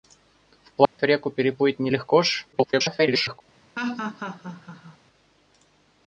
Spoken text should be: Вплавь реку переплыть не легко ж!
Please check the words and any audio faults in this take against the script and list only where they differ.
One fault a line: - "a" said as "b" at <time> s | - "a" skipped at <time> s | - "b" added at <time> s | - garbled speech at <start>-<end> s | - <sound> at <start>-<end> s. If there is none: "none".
- dropout at 0.9-1.0 s
- garbled speech at 2.5-3.4 s
- laugh at 3.8-5.0 s